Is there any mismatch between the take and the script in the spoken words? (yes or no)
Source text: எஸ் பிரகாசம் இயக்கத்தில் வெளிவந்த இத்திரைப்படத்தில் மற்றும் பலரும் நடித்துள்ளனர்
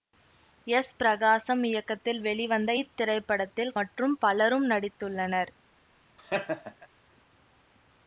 no